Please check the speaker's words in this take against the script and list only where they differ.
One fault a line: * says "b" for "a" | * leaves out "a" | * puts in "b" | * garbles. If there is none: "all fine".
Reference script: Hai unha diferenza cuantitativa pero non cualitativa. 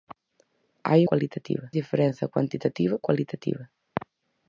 * says "cualitativa" for "unha"
* leaves out "pero non"